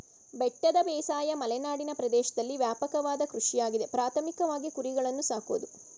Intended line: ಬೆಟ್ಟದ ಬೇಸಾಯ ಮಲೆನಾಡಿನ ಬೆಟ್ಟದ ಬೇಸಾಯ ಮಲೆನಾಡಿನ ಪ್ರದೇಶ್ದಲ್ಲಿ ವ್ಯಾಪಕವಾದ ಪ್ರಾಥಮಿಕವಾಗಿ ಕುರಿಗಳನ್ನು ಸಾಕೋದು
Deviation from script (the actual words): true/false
true